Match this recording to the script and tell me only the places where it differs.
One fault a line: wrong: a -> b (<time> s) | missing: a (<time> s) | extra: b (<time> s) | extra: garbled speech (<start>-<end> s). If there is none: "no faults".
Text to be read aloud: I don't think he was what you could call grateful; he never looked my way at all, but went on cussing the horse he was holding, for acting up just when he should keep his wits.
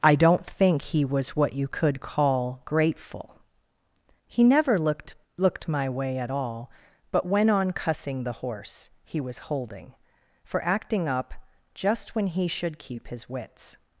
extra: looked (5.4 s)